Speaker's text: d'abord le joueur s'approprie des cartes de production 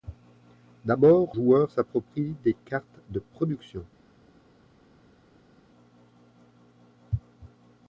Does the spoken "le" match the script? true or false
false